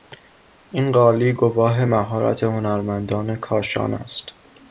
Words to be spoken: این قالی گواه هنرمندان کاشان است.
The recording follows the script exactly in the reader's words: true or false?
false